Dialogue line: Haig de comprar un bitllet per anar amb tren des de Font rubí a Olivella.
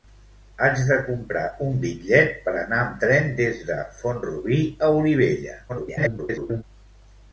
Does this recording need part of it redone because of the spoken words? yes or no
yes